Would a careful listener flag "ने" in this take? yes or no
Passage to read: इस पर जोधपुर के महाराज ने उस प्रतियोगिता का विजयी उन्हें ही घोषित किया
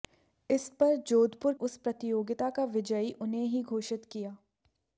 yes